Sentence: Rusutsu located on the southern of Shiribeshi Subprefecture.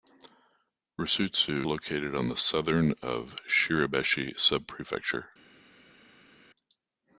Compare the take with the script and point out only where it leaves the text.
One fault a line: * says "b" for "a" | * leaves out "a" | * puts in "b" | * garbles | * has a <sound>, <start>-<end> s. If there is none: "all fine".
all fine